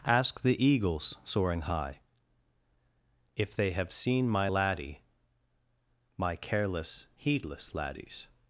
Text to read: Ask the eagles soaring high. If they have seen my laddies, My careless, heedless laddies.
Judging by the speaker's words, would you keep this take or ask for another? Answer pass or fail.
fail